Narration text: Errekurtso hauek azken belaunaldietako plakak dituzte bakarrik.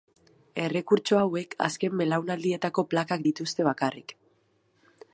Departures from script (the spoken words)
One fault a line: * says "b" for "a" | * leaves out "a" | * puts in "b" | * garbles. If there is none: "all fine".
all fine